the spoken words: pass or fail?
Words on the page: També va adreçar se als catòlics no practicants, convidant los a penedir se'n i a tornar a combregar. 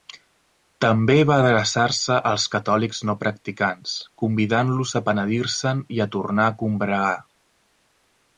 pass